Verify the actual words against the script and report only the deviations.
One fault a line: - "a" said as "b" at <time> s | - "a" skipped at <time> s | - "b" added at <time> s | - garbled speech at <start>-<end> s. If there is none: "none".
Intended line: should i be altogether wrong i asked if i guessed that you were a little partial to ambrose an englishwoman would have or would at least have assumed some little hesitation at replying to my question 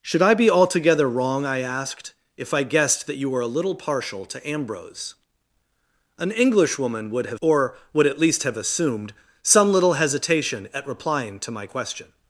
none